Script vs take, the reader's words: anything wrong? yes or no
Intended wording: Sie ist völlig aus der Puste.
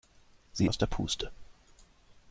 yes